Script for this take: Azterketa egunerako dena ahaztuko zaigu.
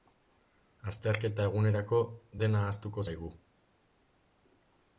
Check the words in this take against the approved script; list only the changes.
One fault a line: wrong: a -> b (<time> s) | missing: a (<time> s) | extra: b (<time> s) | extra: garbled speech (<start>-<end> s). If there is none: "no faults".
no faults